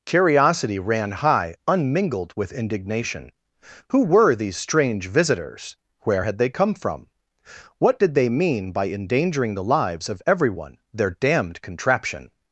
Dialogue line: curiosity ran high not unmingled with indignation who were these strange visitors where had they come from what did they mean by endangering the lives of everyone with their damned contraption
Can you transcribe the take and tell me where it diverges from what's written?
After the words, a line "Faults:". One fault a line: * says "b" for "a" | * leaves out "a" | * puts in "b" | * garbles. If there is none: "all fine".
curiosity ran high unmingled with indignation who were these strange visitors where had they come from what did they mean by endangering the lives of everyone their damned contraption
Faults:
* leaves out "not"
* leaves out "with"